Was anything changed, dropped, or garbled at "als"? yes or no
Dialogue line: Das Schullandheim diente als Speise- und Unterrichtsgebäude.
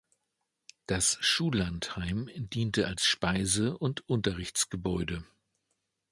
no